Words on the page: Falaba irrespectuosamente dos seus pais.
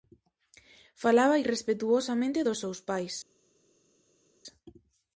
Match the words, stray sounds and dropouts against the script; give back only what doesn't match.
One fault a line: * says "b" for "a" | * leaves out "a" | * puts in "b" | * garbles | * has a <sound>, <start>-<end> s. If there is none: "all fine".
all fine